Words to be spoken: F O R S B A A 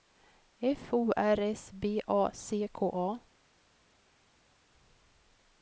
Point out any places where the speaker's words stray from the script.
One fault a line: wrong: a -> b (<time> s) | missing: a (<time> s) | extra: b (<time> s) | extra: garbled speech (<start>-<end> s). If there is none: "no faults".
extra: C K (2.3 s)